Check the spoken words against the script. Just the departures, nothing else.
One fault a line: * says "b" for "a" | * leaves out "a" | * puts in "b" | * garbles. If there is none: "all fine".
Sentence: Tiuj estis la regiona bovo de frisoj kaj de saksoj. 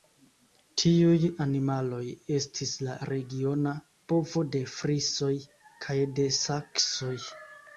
* puts in "animaloj"